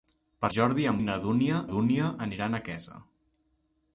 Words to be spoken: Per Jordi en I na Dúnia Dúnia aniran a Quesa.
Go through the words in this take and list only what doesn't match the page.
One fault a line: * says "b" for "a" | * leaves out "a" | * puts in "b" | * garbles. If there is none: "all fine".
all fine